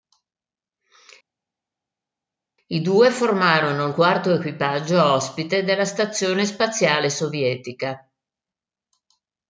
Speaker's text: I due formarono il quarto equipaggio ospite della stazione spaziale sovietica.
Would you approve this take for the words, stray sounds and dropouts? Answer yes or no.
yes